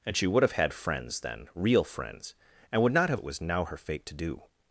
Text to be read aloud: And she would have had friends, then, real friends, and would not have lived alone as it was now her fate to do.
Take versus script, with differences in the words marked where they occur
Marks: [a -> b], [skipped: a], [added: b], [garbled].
And she would have had friends, then, real friends, and would not have [skipped: lived alone as] it was now her fate to do.